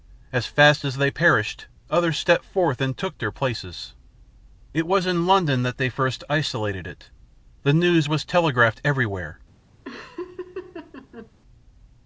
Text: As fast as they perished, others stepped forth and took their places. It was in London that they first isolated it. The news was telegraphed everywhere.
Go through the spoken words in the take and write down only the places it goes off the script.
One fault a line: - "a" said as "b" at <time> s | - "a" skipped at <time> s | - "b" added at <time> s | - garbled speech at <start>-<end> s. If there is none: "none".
none